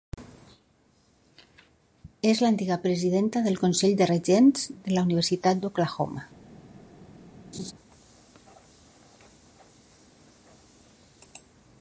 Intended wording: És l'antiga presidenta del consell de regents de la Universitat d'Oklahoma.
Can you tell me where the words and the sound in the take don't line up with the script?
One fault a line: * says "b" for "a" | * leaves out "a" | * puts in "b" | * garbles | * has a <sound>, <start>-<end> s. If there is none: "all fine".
* has a laugh, 7.5-7.7 s